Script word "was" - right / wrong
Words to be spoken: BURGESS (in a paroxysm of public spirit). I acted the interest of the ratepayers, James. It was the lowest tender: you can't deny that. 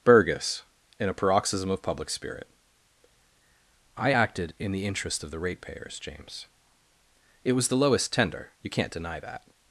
right